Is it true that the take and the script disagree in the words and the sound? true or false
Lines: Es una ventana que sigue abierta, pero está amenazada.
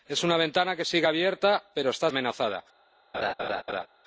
true